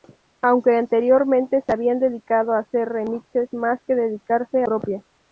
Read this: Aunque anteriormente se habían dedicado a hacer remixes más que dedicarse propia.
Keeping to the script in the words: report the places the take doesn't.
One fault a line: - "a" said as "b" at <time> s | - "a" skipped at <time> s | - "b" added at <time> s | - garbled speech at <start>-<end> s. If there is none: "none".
none